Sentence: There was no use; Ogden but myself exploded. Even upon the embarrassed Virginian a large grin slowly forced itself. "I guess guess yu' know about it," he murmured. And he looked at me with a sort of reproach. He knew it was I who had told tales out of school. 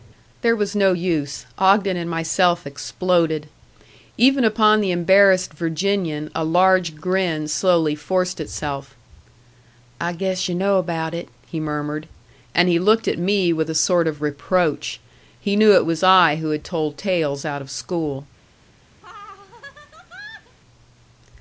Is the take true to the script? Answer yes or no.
no